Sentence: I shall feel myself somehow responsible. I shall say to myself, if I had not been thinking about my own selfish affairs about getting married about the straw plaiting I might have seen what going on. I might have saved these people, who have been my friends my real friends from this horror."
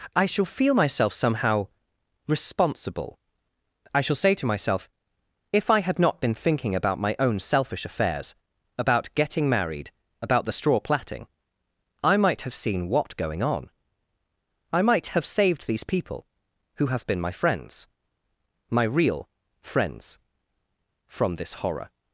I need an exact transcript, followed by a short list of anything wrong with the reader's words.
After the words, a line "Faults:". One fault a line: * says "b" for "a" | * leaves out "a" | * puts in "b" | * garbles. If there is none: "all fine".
I shall feel myself somehow responsible. I shall say to myself, if I had not been thinking about my own selfish affairs about getting married about the straw plaiting I might have seen what going on. I might have saved these people, who have been my friends my real friends from this horror."
Faults:
all fine